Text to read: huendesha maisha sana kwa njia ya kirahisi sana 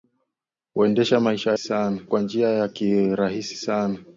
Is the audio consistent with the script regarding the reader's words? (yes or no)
yes